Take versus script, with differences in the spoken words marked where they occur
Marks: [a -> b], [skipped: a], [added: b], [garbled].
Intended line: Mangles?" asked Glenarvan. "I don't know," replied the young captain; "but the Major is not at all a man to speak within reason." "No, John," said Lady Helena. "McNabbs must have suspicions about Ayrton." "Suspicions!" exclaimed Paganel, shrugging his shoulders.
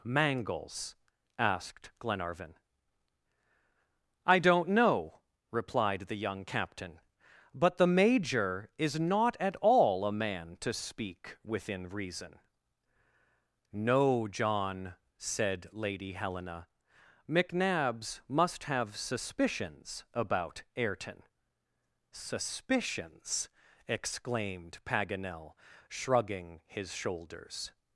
Mangles?" asked Glenarvan. "I don't know," replied the young captain; "but the Major is not at all a man to speak within reason." "No, John," said Lady Helena. "McNabbs must have suspicions about Ayrton." "Suspicions!" exclaimed Paganel, shrugging his shoulders.